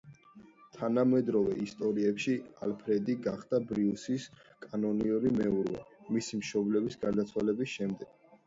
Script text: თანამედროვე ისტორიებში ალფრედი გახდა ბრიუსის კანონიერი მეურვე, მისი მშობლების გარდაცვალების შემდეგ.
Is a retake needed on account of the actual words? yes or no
no